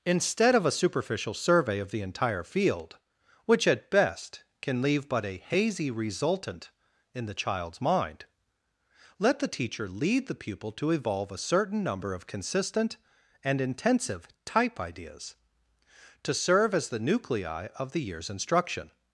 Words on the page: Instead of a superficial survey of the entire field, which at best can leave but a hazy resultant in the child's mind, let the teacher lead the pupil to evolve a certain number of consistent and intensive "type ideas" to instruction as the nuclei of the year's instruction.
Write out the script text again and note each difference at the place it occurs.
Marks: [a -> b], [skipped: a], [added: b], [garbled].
Instead of a superficial survey of the entire field, which at best can leave but a hazy resultant in the child's mind, let the teacher lead the pupil to evolve a certain number of consistent and intensive "type ideas" to [instruction -> serve] as the nuclei of the year's instruction.